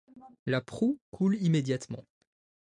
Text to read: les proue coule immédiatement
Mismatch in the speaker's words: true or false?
true